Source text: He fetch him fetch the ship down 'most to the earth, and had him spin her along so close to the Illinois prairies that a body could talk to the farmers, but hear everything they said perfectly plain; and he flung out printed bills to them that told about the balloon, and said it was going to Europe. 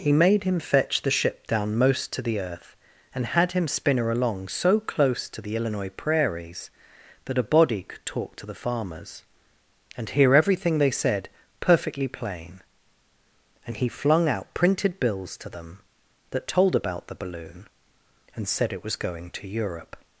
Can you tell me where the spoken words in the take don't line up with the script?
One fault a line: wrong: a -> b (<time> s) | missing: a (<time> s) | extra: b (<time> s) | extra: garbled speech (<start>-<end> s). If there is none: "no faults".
wrong: fetch -> made (0.1 s)
wrong: but -> and (9.9 s)